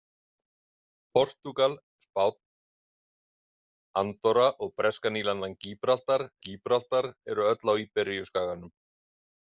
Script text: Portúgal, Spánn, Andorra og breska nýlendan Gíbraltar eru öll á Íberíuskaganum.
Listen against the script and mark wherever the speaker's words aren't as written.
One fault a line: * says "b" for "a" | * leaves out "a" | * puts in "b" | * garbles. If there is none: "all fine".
* puts in "Gíbraltar"